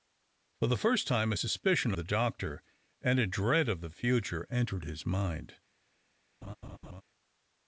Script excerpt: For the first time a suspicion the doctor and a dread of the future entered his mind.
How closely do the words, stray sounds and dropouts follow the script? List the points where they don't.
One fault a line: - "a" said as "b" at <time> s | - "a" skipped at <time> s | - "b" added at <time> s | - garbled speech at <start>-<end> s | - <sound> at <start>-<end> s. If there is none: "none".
- laugh at 6.4-7.0 s